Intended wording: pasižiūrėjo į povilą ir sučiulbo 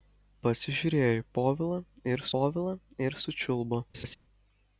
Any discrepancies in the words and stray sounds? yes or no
yes